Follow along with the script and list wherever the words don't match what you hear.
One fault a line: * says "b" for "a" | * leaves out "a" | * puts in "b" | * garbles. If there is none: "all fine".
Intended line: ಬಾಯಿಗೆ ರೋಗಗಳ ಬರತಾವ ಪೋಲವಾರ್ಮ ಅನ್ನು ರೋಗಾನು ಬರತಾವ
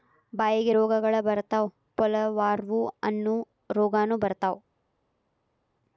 all fine